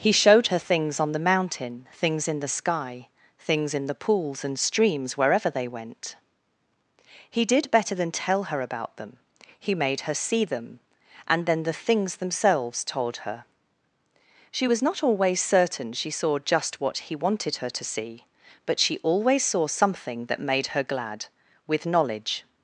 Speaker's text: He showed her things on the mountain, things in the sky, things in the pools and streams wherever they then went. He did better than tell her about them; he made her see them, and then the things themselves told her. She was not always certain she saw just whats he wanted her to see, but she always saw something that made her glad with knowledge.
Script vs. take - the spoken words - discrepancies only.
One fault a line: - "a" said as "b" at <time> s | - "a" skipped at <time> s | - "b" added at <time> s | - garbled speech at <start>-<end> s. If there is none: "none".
- "then" skipped at 5.7 s
- "whats" said as "what" at 16.8 s